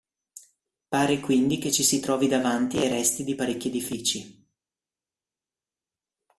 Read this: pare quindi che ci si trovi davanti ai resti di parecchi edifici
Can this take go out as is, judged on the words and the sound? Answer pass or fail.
pass